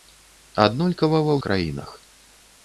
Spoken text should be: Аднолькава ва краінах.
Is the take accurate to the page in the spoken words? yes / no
yes